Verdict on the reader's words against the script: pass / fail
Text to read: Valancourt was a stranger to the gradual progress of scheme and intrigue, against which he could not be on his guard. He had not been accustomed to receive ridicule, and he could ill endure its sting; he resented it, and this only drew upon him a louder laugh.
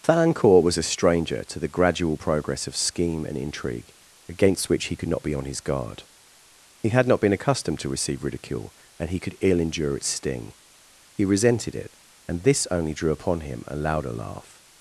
pass